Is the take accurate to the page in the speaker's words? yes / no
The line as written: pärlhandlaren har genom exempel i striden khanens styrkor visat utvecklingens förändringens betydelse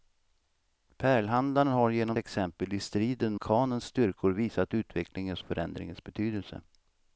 yes